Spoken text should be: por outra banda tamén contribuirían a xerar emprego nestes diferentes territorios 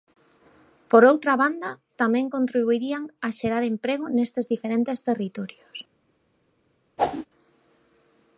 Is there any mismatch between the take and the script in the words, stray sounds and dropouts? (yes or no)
yes